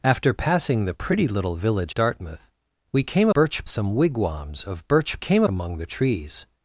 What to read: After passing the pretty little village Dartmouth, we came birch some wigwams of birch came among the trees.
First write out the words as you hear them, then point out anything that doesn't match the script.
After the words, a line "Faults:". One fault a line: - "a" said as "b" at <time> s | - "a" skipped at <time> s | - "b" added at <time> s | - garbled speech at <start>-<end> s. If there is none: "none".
After passing the pretty little village Dartmouth, we came birch some wigwams of birch came among the trees.
Faults:
none